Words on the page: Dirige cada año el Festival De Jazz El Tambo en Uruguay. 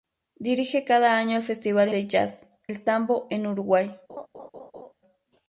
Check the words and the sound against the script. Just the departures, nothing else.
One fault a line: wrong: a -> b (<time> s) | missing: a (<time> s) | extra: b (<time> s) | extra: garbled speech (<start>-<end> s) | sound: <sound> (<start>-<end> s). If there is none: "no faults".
sound: laugh (4.1-4.9 s)